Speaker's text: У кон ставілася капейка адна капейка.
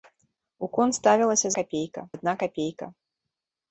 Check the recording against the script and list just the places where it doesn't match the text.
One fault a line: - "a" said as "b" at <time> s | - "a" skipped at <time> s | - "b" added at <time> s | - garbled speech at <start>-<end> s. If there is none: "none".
none